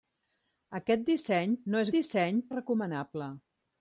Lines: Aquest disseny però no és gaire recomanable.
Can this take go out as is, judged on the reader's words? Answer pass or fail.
fail